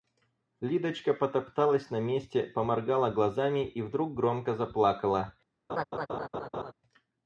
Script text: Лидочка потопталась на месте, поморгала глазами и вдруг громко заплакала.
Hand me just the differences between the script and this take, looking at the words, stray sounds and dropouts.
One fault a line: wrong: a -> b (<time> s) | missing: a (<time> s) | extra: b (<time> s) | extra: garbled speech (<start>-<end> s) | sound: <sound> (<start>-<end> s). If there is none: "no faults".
sound: laugh (5.7-6.7 s)